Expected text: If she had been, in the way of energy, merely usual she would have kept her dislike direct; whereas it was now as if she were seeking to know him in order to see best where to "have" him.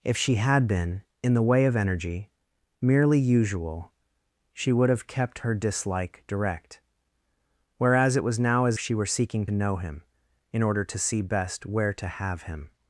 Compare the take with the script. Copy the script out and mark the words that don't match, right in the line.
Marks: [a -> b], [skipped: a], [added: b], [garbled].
If she had been, in the way of energy, merely usual she would have kept her dislike direct; whereas it was now as [skipped: if] she were seeking [skipped: to] know him in order to see best where to "have" him.